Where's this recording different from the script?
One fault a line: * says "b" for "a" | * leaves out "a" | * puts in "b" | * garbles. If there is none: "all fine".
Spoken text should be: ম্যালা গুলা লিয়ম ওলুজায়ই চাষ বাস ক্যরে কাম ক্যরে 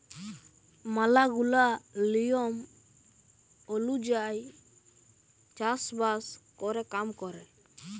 all fine